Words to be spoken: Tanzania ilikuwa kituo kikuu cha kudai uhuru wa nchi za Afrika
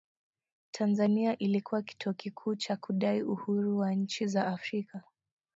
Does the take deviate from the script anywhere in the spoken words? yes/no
no